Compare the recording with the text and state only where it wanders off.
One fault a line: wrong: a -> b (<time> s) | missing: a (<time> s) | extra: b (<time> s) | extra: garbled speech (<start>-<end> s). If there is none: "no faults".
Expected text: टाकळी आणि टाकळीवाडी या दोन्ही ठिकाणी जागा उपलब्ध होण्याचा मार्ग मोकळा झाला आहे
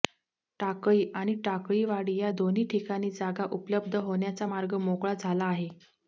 no faults